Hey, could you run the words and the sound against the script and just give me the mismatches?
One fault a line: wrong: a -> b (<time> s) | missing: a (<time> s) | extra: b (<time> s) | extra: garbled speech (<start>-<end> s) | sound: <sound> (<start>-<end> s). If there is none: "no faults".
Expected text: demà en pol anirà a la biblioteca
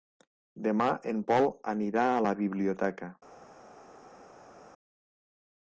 no faults